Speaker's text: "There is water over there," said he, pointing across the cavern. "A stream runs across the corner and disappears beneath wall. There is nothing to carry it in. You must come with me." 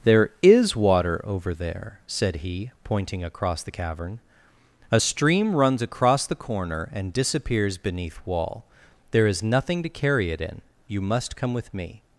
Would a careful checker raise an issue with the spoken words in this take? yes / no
no